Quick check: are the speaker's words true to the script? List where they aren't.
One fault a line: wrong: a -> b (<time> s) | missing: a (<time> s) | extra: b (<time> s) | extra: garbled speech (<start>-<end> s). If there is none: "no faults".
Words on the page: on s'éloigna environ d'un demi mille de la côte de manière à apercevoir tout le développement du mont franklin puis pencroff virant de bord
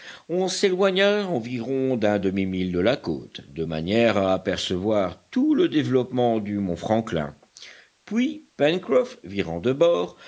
no faults